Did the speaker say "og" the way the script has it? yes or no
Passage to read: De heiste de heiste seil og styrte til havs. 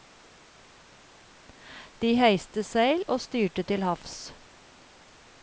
yes